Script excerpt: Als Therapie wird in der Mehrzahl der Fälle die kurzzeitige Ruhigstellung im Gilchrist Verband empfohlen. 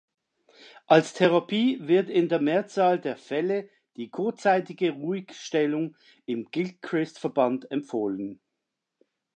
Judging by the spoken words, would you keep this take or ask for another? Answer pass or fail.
pass